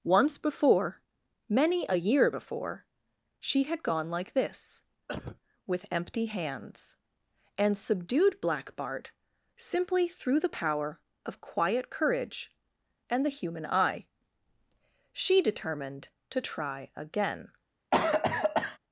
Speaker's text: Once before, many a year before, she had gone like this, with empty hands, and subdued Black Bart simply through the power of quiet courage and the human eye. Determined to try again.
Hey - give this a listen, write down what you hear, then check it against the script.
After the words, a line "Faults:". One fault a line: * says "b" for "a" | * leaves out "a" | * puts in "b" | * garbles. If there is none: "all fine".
Once before, many a year before, she had gone like this, with empty hands, and subdued Black Bart simply through the power of quiet courage and the human eye. She determined to try again.
Faults:
* puts in "She"